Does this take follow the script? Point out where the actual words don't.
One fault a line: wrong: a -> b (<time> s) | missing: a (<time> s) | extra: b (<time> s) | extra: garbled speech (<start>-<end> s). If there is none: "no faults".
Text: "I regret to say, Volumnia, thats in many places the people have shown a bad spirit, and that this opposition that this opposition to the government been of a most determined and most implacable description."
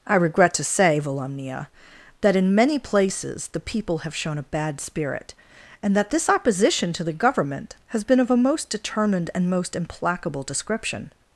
wrong: thats -> that (2.2 s)
missing: that this opposition (6.9 s)
extra: has (7.9 s)